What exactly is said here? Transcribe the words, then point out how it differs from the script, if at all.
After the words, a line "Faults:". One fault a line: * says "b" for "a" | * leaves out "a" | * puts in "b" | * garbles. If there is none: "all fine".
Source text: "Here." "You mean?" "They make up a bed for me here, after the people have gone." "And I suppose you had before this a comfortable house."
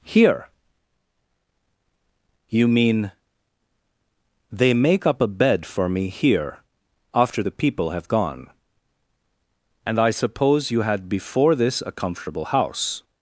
"Here." "You mean?" "They make up a bed for me here, after the people have gone." "And I suppose you had before this a comfortable house."
Faults:
all fine